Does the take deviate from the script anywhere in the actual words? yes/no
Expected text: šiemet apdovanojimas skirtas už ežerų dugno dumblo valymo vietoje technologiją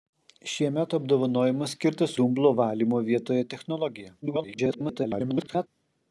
yes